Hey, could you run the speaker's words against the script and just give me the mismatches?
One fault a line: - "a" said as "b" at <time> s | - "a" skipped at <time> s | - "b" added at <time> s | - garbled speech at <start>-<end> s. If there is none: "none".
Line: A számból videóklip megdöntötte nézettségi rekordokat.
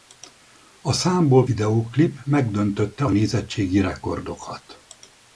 none